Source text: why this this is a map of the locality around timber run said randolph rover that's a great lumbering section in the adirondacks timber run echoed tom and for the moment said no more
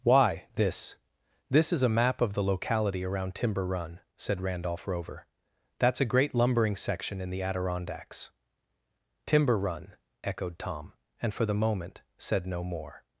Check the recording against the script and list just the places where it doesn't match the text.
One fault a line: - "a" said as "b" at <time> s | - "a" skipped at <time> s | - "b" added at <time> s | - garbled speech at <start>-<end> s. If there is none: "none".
none